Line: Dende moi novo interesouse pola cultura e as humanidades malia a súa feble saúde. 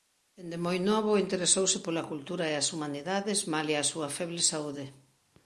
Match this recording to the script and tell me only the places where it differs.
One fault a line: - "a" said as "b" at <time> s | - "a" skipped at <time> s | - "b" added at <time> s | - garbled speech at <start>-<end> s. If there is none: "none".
none